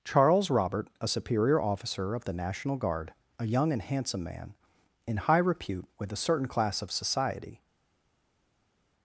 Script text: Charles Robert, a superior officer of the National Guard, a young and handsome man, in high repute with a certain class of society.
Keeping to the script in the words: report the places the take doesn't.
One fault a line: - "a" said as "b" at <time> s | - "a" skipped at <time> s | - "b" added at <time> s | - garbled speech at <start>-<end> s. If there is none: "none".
none